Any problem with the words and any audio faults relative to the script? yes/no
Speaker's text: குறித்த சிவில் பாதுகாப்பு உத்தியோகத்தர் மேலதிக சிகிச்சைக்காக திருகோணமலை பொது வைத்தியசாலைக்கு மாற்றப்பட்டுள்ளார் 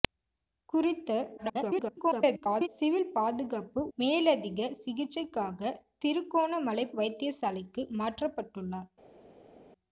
yes